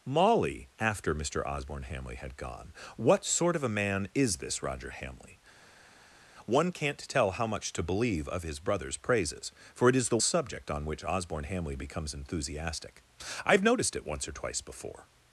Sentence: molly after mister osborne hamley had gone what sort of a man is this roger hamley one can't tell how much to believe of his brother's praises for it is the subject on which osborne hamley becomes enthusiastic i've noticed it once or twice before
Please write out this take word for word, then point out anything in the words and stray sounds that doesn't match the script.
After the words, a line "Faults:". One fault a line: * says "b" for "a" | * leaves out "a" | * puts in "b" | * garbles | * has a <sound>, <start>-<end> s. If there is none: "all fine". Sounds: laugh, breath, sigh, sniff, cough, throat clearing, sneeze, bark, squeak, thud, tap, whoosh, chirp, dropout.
molly after mister osborne hamley had gone what sort of a man is this roger hamley one can't tell how much to believe of his brother's praises for it is the subject on which osborne hamley becomes enthusiastic i've noticed it once or twice before
Faults:
all fine